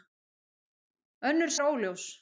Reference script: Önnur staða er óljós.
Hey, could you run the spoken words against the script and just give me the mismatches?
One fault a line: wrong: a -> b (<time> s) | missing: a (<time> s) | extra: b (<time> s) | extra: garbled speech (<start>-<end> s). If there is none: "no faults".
missing: staða (1.5 s)